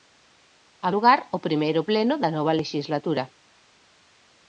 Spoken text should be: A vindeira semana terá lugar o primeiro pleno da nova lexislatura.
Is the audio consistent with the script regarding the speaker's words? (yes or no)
no